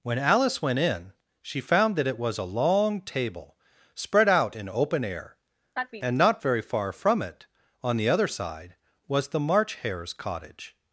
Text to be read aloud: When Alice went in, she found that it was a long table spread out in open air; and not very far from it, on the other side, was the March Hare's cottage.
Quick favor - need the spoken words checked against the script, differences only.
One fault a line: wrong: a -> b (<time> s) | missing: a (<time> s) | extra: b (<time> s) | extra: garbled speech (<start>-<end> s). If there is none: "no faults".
no faults